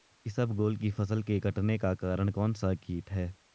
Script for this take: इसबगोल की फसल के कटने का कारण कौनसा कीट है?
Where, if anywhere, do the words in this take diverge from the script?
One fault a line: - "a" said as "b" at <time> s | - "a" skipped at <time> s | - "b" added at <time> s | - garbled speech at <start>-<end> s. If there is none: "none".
none